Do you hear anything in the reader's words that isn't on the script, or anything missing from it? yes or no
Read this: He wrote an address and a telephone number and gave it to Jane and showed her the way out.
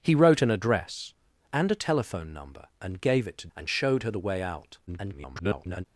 yes